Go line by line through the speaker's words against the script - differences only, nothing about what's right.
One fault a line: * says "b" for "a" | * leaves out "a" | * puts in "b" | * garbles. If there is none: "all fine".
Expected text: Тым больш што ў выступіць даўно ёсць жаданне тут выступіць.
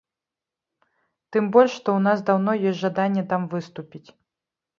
* says "нас" for "выступіць"
* says "там" for "тут"